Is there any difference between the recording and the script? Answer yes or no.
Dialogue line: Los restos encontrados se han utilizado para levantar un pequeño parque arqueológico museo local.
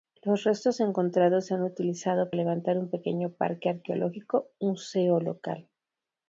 yes